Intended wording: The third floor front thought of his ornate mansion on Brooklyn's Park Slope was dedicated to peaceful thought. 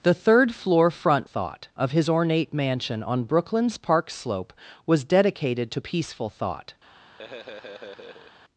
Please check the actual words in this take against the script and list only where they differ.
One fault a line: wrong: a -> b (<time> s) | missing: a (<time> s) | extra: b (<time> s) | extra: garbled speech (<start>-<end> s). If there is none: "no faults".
no faults